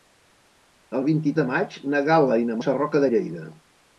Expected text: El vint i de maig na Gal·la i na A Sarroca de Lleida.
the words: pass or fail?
pass